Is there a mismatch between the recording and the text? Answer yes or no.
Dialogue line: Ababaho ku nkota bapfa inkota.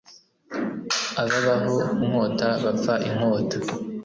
yes